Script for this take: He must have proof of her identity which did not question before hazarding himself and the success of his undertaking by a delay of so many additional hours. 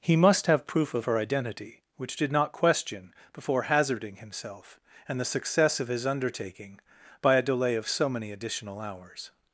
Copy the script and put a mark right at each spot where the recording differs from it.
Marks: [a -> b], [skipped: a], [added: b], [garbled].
He must have proof of her identity which did not question before hazarding himself and the success of his undertaking by a delay of so many additional hours.